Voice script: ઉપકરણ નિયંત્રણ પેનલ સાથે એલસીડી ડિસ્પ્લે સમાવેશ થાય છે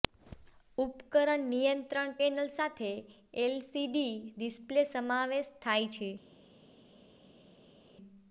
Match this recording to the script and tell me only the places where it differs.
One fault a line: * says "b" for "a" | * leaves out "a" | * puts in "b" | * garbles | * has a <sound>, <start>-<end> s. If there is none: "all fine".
all fine